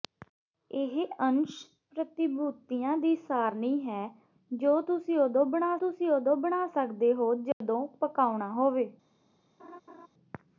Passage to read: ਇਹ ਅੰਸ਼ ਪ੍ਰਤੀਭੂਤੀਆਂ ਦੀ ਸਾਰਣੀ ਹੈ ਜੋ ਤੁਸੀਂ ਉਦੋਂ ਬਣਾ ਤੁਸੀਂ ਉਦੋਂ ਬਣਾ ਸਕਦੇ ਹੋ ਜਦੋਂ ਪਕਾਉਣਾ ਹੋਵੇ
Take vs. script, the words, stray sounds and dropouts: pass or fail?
fail